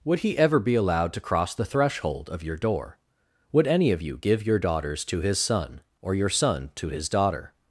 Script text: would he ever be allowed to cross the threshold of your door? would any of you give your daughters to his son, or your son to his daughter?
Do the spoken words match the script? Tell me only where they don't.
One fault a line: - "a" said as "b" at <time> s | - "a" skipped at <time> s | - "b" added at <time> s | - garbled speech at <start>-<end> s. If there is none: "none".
none